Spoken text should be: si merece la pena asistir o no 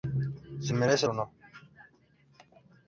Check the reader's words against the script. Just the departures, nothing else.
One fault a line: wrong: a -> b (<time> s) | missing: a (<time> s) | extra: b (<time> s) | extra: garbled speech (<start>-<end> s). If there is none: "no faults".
missing: la pena asistir (1.1 s)